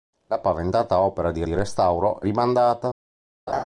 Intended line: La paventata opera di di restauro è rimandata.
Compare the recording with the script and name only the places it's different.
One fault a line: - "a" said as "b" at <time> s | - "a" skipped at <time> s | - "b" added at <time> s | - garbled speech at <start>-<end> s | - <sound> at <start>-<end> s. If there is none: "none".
- laugh at 3.5-3.6 s